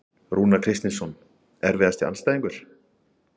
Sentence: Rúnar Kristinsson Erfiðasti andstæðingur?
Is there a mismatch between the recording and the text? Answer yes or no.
no